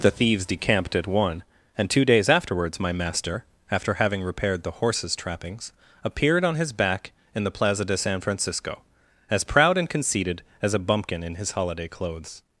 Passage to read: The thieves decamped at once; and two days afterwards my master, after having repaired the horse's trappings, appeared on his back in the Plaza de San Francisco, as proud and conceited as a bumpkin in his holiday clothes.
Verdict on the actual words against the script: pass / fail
fail